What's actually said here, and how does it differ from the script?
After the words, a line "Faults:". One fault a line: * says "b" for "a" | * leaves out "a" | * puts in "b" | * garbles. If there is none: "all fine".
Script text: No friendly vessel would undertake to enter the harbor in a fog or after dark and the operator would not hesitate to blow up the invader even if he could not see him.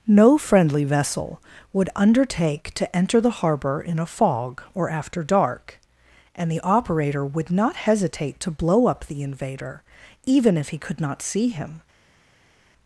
No friendly vessel would undertake to enter the harbor in a fog or after dark and the operator would not hesitate to blow up the invader even if he could not see him.
Faults:
all fine